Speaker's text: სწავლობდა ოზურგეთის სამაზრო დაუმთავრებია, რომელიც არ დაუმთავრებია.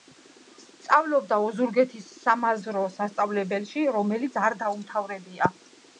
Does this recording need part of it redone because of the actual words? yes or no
yes